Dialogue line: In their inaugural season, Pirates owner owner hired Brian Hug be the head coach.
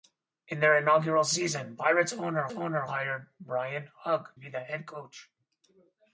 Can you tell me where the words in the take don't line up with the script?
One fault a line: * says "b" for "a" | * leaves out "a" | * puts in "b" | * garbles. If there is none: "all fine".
all fine